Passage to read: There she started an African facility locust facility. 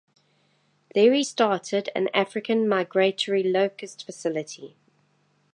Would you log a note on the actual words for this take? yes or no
yes